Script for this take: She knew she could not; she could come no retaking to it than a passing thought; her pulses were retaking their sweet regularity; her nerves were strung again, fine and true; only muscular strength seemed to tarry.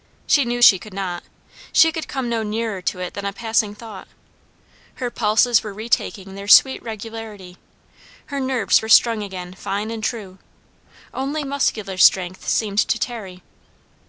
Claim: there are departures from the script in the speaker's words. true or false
true